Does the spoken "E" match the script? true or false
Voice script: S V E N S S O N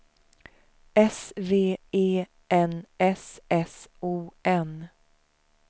true